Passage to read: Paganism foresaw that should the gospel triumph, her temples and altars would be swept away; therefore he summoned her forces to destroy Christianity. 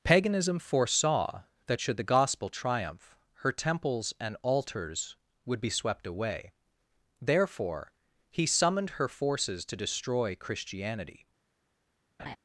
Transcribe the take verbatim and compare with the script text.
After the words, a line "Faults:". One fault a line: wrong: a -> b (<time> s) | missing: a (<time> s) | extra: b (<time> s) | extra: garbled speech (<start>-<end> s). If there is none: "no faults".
Paganism foresaw that should the gospel triumph, her temples and altars would be swept away; therefore he summoned her forces to destroy Christianity.
Faults:
no faults